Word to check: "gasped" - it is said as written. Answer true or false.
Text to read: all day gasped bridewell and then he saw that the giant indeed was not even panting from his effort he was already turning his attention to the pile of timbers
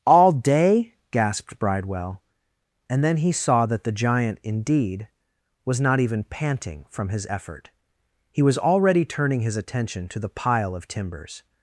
true